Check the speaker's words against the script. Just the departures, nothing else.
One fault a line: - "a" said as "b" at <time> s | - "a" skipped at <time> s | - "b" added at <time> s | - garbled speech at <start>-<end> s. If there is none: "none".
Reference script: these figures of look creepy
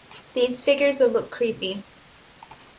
none